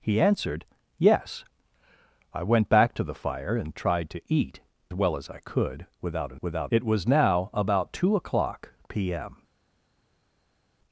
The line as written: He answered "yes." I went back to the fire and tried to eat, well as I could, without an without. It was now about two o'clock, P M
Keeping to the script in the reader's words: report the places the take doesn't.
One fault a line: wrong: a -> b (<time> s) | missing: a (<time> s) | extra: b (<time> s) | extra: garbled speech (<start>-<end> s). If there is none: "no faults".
no faults